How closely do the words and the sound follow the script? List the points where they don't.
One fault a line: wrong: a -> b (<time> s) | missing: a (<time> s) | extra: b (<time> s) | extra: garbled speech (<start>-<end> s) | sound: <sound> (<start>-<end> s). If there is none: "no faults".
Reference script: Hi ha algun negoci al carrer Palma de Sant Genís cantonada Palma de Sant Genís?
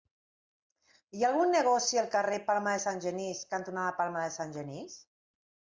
no faults